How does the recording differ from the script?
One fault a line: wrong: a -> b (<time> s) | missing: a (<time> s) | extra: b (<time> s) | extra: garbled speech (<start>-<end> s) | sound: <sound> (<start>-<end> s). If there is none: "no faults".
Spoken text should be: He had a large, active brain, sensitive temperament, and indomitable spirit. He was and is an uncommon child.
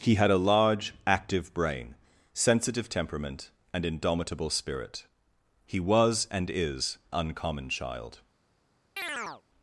missing: an (7.0 s)
sound: chirp (9.0-9.4 s)